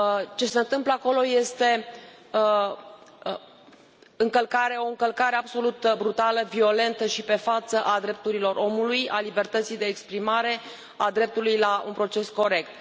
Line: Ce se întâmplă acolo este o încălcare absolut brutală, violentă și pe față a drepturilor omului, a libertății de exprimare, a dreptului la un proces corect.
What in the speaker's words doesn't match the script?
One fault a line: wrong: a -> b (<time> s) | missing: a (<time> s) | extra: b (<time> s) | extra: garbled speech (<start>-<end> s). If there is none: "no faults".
no faults